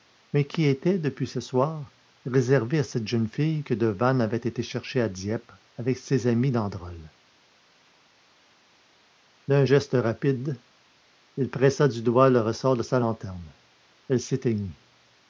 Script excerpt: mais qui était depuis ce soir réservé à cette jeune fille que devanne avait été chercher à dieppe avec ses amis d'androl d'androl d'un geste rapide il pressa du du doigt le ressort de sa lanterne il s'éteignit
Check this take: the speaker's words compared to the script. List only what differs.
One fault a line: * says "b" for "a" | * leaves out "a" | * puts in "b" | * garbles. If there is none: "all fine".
* leaves out "d'androl"
* leaves out "du"
* says "elle" for "il"